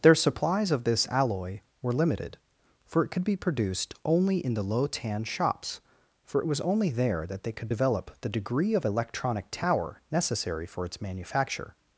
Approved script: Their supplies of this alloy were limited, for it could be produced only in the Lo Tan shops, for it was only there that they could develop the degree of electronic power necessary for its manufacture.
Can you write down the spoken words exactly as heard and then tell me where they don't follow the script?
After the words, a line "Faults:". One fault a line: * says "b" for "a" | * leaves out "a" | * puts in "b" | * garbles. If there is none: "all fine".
Their supplies of this alloy were limited, for it could be produced only in the Lo Tan shops, for it was only there that they could develop the degree of electronic tower necessary for its manufacture.
Faults:
* says "tower" for "power"